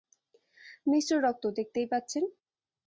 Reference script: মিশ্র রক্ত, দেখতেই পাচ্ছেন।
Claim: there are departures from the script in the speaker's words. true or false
false